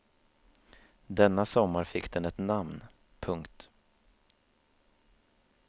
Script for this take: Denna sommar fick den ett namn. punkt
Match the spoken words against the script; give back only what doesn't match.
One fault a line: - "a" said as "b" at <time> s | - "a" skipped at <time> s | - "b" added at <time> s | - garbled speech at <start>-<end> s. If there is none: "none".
none